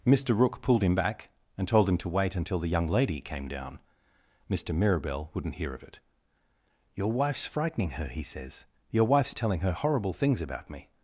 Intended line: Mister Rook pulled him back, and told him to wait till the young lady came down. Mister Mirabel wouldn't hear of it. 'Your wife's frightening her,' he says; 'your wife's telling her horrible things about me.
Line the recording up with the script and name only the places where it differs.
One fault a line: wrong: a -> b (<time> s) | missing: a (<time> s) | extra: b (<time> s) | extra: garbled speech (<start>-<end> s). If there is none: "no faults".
wrong: till -> until (2.4 s)